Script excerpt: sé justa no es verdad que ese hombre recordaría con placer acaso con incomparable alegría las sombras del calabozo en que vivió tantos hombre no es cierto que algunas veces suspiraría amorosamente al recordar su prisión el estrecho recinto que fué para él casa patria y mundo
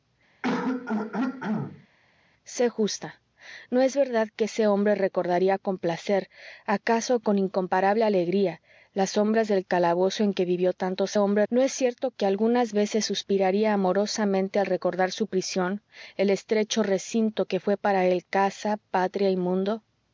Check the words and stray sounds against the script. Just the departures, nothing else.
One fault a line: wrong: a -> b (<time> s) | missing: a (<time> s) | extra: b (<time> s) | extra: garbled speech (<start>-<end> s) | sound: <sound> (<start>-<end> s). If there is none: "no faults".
sound: throat clearing (0.4-1.9 s)